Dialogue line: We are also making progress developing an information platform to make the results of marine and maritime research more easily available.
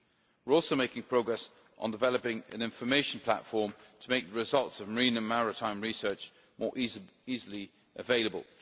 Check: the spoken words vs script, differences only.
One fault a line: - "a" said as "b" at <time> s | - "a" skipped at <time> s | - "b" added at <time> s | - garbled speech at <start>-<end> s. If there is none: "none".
- "on" added at 1.8 s